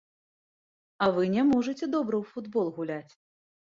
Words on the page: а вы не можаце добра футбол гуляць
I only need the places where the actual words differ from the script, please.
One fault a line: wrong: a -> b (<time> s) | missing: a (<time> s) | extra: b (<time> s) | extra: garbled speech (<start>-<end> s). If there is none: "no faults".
extra: ў (2.2 s)